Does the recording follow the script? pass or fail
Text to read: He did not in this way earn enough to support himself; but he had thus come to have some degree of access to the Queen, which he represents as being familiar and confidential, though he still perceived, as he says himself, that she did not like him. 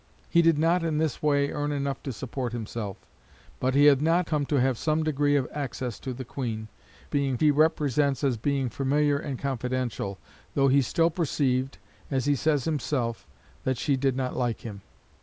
fail